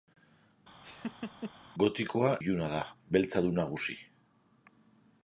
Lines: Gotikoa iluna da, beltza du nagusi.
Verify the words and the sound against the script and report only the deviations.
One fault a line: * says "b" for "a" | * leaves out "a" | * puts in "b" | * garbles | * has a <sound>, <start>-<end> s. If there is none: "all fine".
* has a laugh, 0.8-1.5 s